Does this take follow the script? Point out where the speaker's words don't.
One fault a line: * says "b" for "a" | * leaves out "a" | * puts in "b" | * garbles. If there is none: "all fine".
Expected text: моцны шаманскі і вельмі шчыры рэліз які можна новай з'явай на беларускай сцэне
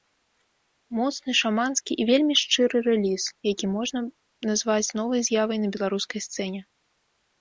* puts in "назваць"